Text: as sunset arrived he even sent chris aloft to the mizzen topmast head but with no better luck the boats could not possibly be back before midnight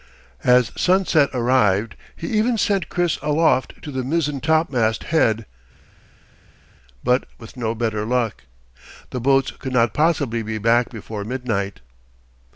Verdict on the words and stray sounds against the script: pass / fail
pass